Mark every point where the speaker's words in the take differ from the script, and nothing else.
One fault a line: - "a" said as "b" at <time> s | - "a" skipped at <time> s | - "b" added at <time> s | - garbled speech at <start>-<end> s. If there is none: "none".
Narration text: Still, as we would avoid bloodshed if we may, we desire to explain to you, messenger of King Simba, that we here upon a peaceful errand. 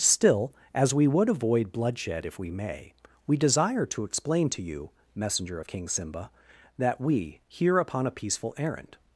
none